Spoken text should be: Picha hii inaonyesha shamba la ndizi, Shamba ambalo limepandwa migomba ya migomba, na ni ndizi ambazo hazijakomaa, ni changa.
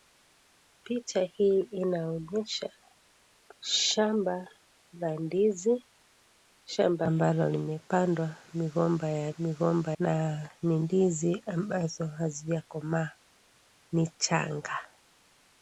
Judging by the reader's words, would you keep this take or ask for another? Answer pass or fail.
pass